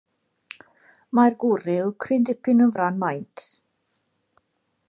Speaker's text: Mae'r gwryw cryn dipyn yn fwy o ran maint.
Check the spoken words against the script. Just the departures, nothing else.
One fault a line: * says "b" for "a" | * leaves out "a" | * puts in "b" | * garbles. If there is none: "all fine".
* leaves out "fwy"